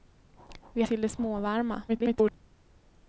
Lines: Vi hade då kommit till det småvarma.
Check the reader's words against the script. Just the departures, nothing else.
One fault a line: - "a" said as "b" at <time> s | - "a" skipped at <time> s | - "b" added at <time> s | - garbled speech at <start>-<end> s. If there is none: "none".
- "hade då kommit" skipped at 0.8 s
- garbled speech at 1.9-2.3 s